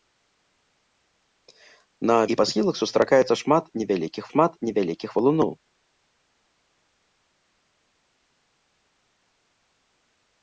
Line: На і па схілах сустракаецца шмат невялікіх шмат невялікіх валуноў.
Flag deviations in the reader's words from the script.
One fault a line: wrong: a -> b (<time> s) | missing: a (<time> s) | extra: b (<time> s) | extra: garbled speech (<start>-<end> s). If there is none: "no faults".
no faults